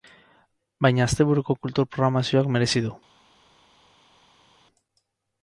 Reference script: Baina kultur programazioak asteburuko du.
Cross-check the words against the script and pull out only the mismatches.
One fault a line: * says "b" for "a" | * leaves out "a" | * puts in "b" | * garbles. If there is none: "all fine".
* puts in "asteburuko"
* says "merezi" for "asteburuko"